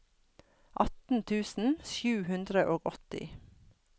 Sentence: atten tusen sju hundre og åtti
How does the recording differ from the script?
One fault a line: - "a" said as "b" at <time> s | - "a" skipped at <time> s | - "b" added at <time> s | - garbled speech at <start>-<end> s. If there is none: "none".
none